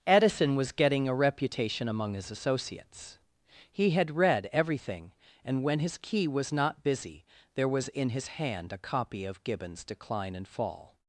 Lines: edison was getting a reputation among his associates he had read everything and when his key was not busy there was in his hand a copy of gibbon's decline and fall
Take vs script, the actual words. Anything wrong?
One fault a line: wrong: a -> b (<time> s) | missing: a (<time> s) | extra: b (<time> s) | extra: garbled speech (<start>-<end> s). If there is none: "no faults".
no faults